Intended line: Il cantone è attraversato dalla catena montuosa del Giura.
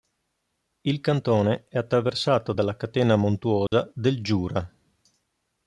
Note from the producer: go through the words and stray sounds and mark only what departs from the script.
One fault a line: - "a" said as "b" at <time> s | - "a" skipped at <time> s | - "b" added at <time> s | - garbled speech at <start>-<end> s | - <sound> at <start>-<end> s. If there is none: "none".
- dropout at 3.7-3.7 s